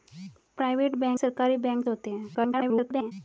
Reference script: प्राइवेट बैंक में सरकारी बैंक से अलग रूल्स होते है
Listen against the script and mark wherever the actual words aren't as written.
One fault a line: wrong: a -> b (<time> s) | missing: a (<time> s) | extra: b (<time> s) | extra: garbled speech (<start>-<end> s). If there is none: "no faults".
missing: में (1.2 s)
missing: से अलग रूल्स (1.8 s)
extra: garbled speech (2.3-3.1 s)